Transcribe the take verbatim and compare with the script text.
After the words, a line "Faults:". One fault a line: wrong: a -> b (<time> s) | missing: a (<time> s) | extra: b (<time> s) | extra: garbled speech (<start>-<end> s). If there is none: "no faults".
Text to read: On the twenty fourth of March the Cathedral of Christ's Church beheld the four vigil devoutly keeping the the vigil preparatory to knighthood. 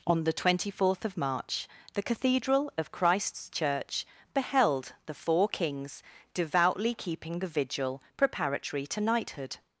On the twenty fourth of March the Cathedral of Christ's Church beheld the four kings devoutly keeping the vigil preparatory to knighthood.
Faults:
wrong: vigil -> kings (5.5 s)
missing: the (7.5 s)